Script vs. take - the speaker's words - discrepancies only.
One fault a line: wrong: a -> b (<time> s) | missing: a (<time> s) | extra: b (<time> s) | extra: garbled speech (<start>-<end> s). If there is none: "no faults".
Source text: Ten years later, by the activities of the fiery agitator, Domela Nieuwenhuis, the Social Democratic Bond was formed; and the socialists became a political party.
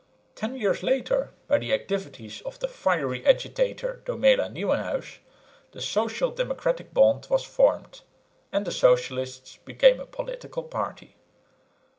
no faults